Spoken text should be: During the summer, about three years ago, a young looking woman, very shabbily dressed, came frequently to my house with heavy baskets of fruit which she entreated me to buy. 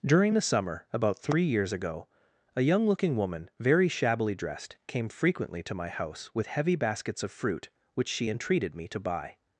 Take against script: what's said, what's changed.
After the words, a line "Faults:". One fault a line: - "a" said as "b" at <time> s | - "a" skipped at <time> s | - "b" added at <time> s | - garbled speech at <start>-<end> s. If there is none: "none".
During the summer, about three years ago, a young looking woman, very shabbily dressed, came frequently to my house with heavy baskets of fruit which she entreated me to buy.
Faults:
none